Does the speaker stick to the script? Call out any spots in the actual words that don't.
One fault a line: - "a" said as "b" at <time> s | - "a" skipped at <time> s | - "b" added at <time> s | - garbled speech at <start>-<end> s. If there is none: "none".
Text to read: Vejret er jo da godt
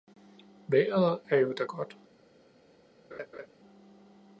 none